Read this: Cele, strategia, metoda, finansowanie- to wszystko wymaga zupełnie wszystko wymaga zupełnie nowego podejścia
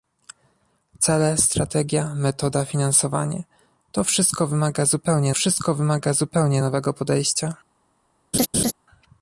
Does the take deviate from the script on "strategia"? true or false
false